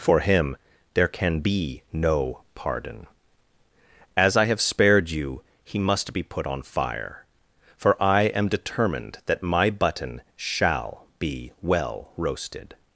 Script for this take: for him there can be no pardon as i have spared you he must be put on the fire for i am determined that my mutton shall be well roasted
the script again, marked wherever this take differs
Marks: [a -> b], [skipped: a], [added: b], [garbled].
for him there can be no pardon as i have spared you he must be put on [skipped: the] fire for i am determined that my [mutton -> button] shall be well roasted